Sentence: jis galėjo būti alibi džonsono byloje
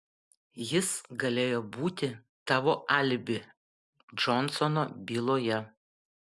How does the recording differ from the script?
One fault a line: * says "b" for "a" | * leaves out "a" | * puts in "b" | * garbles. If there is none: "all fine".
* puts in "tavo"